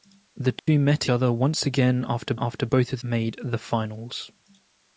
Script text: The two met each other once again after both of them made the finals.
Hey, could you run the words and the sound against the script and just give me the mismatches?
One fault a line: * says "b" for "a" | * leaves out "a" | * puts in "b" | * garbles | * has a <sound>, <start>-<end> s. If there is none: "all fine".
* has a dropout, 0.6-0.7 s
* leaves out "each"
* puts in "after"
* leaves out "them"